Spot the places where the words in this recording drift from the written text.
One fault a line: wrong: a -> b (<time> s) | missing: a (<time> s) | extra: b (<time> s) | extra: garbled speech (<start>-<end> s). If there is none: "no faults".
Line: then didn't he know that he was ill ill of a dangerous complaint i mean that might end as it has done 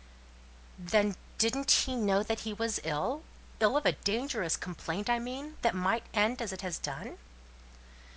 no faults